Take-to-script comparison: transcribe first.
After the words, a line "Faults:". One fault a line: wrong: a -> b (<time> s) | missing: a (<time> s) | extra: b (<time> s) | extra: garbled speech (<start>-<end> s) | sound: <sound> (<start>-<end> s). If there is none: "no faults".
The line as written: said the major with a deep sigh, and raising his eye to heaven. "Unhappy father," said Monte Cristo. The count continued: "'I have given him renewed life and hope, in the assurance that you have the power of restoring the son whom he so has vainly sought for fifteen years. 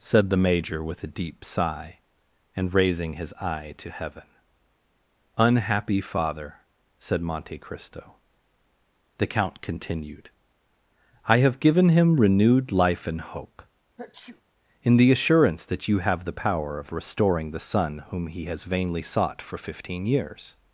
said the major with a deep sigh, and raising his eye to heaven. "Unhappy father," said Monte Cristo. The count continued: "'I have given him renewed life and hope, in the assurance that you have the power of restoring the son whom he has vainly sought for fifteen years.
Faults:
sound: sneeze (14.0-14.4 s)
missing: so (18.4 s)